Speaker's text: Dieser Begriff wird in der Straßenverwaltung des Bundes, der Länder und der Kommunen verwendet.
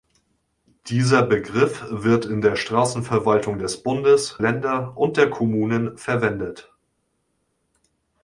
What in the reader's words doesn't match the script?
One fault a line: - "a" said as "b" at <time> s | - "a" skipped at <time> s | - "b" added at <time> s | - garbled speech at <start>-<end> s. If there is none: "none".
- "der" skipped at 4.4 s